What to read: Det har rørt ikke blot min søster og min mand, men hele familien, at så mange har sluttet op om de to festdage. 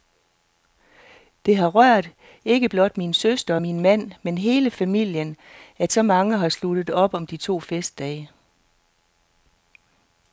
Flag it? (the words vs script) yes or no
no